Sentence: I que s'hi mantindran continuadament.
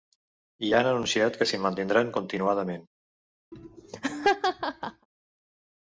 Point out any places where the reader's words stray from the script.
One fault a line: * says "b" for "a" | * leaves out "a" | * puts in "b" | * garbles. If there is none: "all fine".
* puts in "han anunciat"